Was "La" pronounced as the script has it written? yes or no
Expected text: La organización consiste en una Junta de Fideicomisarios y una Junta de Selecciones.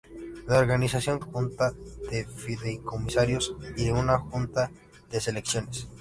yes